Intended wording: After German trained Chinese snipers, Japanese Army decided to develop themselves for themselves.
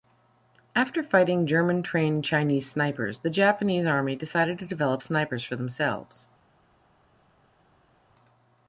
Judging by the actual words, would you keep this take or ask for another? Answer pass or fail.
fail